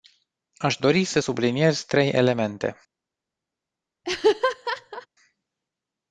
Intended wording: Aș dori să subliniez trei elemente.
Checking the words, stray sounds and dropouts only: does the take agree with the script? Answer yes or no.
no